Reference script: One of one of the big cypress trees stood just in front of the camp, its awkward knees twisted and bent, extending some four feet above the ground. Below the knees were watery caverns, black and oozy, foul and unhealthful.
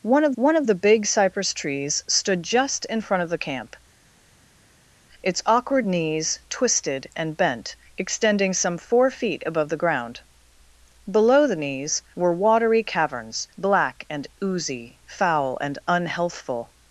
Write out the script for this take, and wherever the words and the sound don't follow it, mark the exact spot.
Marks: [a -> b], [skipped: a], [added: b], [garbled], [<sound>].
One of one of the big cypress trees stood just in front of the camp, its awkward knees twisted and bent, extending some four feet above the ground. Below the knees were watery caverns, black and oozy, foul and unhealthful.